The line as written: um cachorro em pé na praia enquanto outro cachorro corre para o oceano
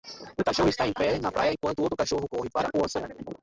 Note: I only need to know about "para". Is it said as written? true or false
true